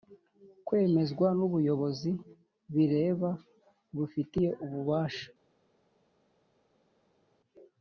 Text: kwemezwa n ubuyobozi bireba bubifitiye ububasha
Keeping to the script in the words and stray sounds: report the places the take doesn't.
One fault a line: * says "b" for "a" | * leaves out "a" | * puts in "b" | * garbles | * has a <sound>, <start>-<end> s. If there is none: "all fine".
all fine